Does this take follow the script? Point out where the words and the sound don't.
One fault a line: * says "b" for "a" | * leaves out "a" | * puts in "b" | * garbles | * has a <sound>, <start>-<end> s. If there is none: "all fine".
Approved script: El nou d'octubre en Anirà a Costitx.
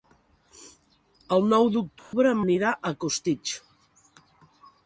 * has a dropout, 2.0-2.1 s